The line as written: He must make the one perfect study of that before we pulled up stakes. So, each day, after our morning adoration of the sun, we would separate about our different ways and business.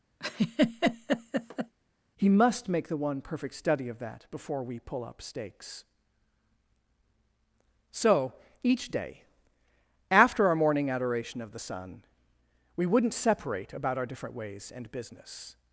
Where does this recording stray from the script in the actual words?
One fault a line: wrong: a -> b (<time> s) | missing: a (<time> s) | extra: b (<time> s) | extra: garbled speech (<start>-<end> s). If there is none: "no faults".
wrong: pulled -> pull (4.8 s)
wrong: would -> wouldn't (12.9 s)